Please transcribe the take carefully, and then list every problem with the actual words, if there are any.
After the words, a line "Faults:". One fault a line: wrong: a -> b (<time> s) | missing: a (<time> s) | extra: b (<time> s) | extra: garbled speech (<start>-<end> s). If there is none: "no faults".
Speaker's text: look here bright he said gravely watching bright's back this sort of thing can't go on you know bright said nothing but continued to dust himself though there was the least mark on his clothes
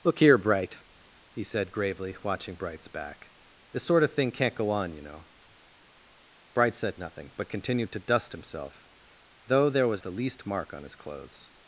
look here bright he said gravely watching bright's back this sort of thing can't go on you know bright said nothing but continued to dust himself though there was the least mark on his clothes
Faults:
no faults